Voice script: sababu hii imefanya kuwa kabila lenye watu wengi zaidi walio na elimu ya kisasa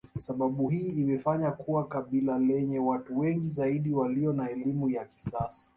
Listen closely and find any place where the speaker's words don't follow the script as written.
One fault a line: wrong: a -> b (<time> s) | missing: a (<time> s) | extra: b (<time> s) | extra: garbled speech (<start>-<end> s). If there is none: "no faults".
no faults